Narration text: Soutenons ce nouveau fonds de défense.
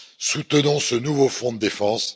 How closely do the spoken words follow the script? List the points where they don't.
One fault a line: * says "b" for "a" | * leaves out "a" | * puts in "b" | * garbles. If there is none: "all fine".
all fine